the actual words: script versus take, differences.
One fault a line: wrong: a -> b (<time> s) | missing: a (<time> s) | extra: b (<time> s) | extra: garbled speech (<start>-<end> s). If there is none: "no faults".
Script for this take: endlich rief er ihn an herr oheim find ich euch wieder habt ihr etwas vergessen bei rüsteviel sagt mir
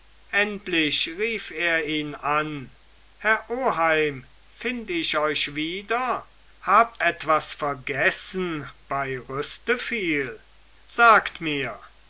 missing: ihr (7.0 s)